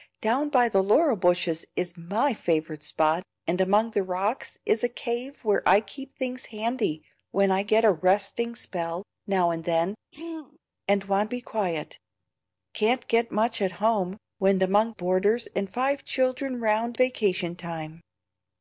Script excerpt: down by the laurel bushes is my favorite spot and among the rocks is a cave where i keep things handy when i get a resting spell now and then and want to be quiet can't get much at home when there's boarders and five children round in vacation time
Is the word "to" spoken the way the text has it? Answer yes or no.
no